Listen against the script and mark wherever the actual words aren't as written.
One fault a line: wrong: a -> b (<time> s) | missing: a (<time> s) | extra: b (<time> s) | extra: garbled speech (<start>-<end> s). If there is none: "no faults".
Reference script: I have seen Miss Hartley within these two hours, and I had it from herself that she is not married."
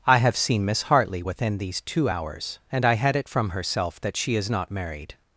no faults